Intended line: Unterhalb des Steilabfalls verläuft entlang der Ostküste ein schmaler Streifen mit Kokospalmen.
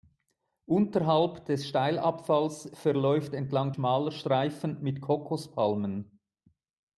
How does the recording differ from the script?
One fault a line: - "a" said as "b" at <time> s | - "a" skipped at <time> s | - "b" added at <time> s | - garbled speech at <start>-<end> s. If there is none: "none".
- "der Ostküste ein" skipped at 3.7 s